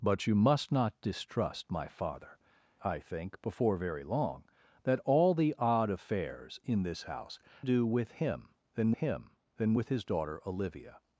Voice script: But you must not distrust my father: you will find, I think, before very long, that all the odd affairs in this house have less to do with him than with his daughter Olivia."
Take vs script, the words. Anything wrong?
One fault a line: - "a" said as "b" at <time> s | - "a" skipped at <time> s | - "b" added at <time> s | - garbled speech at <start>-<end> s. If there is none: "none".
- "you will find" skipped at 2.4 s
- "have less to do with" said as "do with him than" at 7.6 s